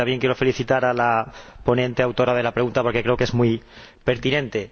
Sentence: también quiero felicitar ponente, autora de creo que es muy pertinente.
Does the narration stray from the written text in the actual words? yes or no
yes